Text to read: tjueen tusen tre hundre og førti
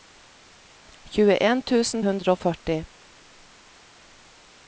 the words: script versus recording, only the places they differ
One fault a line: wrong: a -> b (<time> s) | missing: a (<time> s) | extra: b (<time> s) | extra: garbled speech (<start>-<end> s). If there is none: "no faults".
missing: tre (2.0 s)